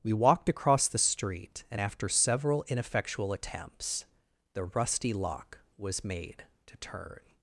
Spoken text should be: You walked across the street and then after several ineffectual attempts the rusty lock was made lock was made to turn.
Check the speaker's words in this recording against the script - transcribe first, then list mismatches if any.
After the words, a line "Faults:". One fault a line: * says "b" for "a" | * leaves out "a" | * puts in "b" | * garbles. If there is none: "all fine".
We walked across the street and after several ineffectual attempts the rusty lock was made to turn.
Faults:
* says "We" for "You"
* leaves out "then"
* leaves out "lock was made"